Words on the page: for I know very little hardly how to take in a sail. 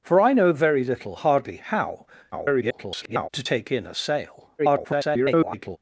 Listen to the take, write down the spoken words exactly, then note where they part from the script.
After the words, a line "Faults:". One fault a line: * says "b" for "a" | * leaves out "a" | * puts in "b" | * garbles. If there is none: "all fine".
for I know very little hardly how [garbled] to take in a sail. [garbled]
Faults:
* garbles
* garbles